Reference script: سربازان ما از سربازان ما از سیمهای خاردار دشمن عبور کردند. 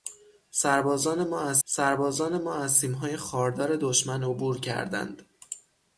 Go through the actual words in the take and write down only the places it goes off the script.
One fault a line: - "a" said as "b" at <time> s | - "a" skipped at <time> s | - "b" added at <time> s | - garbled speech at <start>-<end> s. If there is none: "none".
none